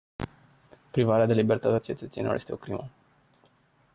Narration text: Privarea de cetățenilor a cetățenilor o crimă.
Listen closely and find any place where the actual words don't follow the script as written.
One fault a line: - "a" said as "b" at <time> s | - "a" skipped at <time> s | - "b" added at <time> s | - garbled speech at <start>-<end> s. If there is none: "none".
- "cetățenilor" said as "libertate" at 1.3 s
- "este" added at 2.3 s